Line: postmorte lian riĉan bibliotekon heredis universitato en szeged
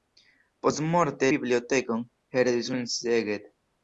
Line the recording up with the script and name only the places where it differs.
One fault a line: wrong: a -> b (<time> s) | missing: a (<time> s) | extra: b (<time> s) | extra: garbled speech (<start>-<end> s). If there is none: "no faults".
missing: lian riĉan (1.3 s)
missing: universitato (2.7 s)